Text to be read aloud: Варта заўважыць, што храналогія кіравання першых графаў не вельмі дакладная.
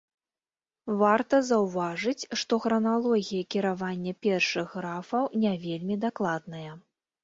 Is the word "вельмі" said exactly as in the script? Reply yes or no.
yes